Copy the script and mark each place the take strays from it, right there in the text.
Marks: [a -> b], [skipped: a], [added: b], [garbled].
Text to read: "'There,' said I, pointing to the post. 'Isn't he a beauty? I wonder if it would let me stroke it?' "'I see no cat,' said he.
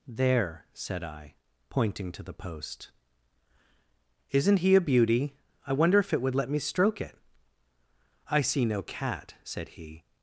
"'There,' said I, pointing to the post. 'Isn't he a beauty? I wonder if it would let me stroke it?' "'I see no cat,' said he.